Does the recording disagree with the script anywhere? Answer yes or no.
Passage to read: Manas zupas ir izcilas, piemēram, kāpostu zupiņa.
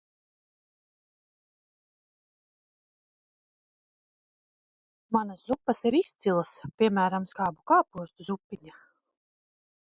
yes